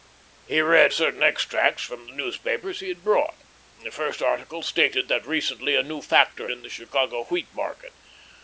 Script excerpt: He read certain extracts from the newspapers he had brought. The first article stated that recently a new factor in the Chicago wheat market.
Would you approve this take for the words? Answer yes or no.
yes